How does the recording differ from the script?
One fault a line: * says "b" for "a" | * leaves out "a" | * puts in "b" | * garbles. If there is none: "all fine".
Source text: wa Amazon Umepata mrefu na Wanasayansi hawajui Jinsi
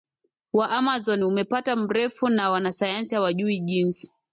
all fine